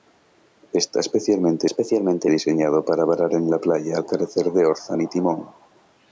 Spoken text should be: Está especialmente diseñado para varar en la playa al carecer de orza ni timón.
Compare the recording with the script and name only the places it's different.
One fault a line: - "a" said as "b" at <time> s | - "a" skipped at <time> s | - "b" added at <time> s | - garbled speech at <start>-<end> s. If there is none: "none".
- "especialmente" added at 1.6 s